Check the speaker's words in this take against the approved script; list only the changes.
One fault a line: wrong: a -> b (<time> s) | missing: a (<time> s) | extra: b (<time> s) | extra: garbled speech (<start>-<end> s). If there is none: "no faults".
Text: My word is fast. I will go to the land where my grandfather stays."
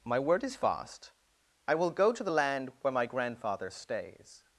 no faults